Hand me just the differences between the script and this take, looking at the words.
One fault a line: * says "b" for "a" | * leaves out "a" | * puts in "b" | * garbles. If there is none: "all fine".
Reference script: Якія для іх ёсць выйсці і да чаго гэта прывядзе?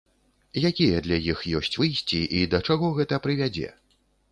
all fine